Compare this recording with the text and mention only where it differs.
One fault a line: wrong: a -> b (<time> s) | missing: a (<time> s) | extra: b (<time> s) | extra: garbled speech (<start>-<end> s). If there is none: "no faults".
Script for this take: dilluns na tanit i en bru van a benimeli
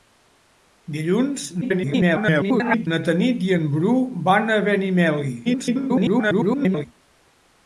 extra: garbled speech (1.6-2.9 s)
extra: garbled speech (5.4-6.9 s)